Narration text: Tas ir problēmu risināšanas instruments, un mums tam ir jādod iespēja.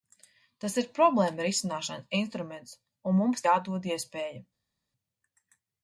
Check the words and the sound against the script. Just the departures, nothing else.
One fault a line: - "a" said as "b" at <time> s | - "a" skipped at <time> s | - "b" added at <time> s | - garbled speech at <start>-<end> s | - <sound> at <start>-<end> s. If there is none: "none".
- "tam ir" skipped at 3.5 s